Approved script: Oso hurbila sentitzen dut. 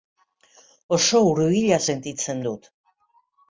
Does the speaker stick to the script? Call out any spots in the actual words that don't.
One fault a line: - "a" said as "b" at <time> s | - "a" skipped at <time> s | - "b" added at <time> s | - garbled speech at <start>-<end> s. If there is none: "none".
none